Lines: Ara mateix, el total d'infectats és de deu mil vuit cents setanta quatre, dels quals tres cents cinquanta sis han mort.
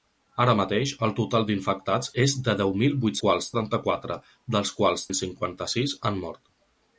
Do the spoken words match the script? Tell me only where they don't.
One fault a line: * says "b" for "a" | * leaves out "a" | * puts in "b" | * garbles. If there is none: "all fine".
* says "quals" for "cents"
* leaves out "tres"